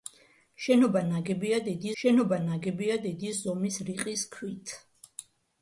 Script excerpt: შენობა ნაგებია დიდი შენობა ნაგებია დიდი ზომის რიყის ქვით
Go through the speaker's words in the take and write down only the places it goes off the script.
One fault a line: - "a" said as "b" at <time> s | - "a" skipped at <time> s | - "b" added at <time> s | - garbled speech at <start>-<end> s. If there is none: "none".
none